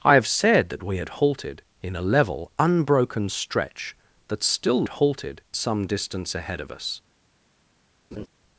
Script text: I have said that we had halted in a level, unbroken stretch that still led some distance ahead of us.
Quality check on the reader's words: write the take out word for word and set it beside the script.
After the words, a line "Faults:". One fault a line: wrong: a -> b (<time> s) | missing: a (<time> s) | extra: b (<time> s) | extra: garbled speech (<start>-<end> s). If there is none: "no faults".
I have said that we had halted in a level, unbroken stretch that still halted some distance ahead of us.
Faults:
wrong: led -> halted (4.9 s)